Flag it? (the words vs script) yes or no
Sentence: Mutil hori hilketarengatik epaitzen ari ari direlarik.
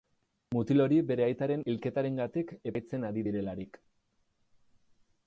yes